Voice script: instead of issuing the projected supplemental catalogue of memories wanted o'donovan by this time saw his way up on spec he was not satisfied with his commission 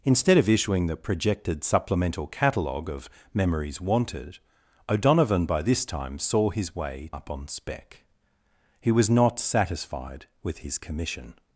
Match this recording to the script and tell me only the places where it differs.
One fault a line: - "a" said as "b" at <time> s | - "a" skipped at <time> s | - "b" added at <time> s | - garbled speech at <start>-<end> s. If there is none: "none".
none